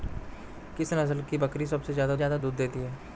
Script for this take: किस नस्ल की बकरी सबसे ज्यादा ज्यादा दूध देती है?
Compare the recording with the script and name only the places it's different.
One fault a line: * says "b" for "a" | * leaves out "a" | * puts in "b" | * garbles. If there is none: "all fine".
all fine